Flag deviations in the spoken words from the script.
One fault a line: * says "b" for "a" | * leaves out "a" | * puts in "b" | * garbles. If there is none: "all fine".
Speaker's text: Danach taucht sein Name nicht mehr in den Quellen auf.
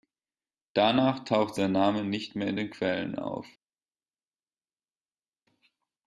all fine